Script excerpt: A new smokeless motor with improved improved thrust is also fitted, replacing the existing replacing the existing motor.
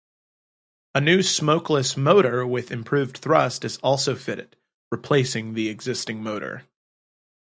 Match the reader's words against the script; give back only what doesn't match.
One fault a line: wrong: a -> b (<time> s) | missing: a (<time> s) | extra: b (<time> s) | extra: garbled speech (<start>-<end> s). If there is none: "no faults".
missing: improved (3.2 s)
missing: replacing the existing (6.2 s)